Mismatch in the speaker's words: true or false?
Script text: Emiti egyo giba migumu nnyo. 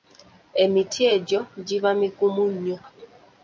false